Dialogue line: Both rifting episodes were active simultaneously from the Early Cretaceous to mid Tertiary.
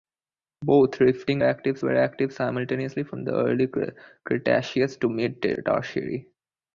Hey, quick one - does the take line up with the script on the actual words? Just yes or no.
no